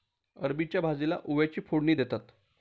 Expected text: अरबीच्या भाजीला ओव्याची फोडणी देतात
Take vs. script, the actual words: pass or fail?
pass